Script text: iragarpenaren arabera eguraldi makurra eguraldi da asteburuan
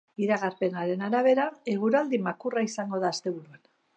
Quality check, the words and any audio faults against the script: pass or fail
fail